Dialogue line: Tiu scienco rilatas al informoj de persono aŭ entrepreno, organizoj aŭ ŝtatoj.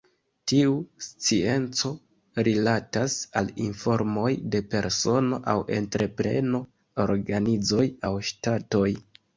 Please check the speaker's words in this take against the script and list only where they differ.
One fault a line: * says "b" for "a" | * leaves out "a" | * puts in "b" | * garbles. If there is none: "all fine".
all fine